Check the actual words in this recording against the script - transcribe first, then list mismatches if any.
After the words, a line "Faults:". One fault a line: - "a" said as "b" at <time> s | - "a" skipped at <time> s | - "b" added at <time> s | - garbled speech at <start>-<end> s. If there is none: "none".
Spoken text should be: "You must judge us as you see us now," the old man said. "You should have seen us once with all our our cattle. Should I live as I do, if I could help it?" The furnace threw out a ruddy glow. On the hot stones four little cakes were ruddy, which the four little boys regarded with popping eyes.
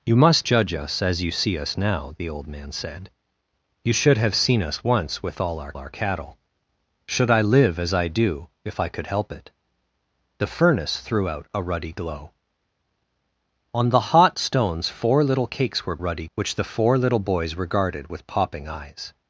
"You must judge us as you see us now," the old man said. "You should have seen us once with all our our cattle. Should I live as I do, if I could help it?" The furnace threw out a ruddy glow. On the hot stones four little cakes were ruddy, which the four little boys regarded with popping eyes.
Faults:
none